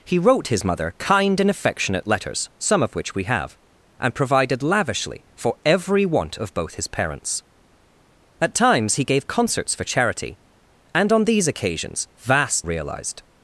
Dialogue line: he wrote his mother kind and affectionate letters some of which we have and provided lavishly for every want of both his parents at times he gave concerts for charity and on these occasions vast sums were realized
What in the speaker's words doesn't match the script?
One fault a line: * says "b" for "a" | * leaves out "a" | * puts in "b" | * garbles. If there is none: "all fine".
* leaves out "sums were"